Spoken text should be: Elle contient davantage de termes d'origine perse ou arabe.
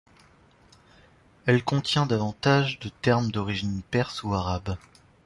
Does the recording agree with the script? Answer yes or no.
yes